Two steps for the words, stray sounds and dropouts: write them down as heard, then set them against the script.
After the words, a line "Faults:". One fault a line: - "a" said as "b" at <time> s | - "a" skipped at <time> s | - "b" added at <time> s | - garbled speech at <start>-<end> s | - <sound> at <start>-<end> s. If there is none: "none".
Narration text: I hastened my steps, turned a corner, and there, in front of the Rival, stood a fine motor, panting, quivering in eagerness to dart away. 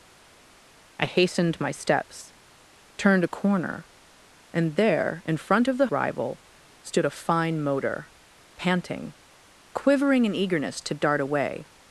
I hastened my steps, turned a corner, and there, in front of the Rival, stood a fine motor, panting, quivering in eagerness to dart away.
Faults:
none